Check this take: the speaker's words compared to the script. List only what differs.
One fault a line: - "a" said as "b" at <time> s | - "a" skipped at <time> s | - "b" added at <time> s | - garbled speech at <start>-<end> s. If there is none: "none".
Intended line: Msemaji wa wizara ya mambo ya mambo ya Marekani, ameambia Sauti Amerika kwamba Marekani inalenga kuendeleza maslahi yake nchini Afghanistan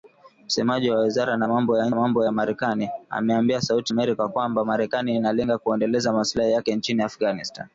none